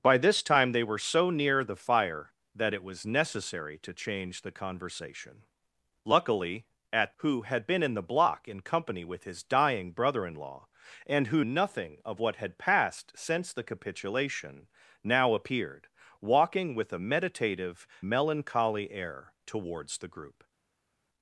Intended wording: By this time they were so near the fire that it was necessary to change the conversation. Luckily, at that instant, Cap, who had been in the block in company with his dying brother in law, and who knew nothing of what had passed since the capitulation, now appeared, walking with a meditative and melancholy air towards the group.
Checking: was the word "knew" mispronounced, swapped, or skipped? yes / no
yes